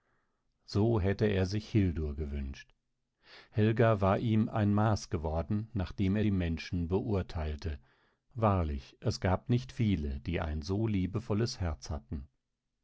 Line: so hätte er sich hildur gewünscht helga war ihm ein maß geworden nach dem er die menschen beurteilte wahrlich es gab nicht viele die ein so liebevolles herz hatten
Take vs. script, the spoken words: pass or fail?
pass